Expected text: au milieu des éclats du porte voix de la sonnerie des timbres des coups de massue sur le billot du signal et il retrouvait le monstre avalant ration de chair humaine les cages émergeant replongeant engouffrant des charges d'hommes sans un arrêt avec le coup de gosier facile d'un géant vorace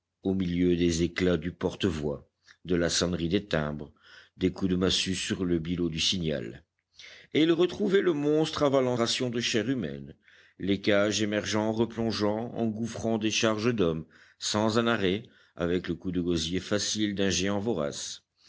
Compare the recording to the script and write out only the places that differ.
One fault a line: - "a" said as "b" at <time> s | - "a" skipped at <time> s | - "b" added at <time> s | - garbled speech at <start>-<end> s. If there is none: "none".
none